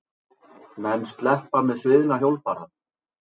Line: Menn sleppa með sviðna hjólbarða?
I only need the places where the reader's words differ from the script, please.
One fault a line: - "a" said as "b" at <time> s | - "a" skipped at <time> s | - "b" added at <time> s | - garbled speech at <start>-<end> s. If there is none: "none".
none